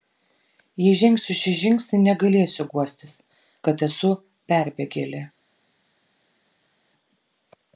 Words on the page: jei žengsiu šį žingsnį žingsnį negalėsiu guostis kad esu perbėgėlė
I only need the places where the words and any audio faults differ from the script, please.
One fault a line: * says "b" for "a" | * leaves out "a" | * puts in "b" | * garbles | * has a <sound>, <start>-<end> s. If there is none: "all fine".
* leaves out "žingsnį"